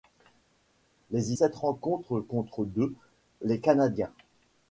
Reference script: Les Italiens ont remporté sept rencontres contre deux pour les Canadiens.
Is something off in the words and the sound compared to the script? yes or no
yes